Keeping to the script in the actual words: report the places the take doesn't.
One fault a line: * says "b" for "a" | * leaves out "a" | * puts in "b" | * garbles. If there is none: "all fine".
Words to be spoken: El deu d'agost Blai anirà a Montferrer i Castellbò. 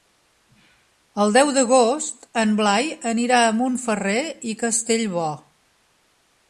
* puts in "en"